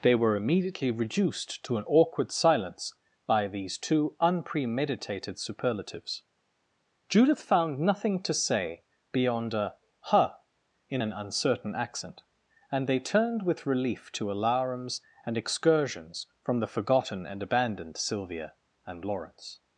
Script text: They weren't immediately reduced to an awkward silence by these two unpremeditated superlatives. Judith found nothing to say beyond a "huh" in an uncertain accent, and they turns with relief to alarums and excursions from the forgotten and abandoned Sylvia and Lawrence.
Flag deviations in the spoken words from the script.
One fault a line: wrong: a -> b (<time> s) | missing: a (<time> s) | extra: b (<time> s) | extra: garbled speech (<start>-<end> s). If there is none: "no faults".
wrong: weren't -> were (0.1 s)
wrong: turns -> turned (13.0 s)